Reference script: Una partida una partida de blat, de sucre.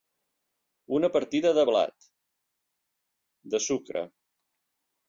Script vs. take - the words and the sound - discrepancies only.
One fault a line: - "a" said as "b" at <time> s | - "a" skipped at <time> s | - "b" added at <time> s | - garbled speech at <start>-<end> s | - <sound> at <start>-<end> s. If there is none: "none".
- "una partida" skipped at 1.5 s